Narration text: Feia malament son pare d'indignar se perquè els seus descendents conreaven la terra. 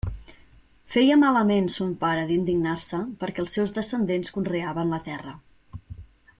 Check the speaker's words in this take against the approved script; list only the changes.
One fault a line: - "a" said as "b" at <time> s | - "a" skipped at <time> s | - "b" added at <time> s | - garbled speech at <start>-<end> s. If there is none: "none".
none